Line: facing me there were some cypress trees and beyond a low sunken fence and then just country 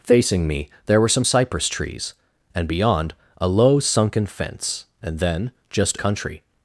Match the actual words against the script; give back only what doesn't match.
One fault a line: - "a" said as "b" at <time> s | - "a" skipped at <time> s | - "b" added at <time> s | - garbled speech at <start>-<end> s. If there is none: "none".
none